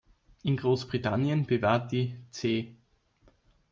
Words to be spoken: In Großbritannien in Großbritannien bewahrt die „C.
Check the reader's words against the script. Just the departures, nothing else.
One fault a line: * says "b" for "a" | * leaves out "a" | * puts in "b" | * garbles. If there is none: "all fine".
* leaves out "in Großbritannien"